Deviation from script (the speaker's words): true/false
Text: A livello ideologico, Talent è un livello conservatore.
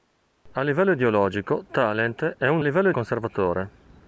false